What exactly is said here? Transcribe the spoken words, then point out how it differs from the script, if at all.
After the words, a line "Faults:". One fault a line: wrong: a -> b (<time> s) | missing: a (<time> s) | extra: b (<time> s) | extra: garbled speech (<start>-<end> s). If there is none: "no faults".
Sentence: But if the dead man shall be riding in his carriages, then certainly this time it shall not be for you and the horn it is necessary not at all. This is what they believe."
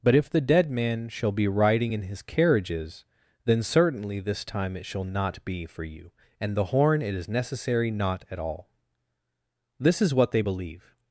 But if the dead man shall be riding in his carriages, then certainly this time it shall not be for you and the horn it is necessary not at all. This is what they believe."
Faults:
no faults